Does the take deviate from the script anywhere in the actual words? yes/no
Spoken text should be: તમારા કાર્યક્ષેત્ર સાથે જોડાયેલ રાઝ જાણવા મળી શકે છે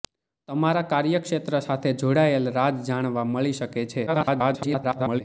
yes